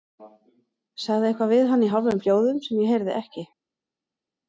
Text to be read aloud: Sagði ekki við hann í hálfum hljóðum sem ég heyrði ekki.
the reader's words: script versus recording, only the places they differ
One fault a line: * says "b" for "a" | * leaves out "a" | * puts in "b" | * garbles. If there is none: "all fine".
* says "eitthvað" for "ekki"